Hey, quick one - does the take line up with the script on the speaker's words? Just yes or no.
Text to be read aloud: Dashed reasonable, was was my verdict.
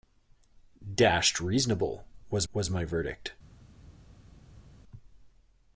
yes